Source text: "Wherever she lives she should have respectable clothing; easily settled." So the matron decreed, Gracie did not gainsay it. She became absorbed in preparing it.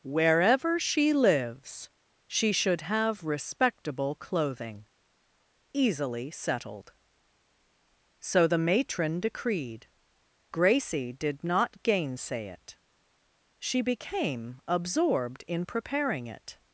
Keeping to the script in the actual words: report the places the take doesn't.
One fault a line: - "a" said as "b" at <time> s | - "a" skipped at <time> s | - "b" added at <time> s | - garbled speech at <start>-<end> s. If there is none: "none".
none